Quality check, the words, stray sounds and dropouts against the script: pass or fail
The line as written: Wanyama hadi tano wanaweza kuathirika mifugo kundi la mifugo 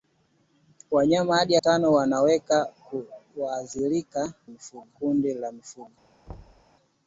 fail